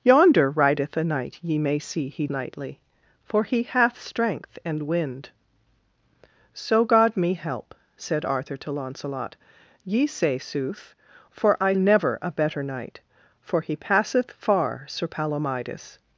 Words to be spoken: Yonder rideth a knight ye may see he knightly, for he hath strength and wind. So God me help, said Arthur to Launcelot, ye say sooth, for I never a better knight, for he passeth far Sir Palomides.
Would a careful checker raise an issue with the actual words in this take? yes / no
no